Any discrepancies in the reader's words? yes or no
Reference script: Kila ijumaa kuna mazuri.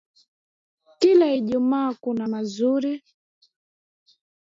no